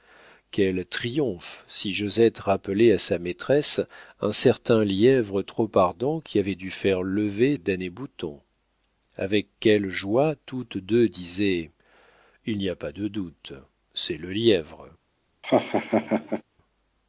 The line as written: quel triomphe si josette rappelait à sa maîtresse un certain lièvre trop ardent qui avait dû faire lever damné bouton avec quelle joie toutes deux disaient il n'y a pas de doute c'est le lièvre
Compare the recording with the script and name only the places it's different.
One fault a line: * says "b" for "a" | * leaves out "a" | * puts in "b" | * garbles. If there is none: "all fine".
all fine